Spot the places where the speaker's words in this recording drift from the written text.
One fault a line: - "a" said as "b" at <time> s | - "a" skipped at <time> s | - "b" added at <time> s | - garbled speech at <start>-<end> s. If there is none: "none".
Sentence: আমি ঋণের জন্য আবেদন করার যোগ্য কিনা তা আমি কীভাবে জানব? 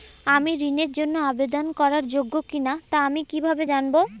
none